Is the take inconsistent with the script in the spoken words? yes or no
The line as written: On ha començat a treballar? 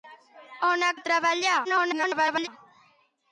yes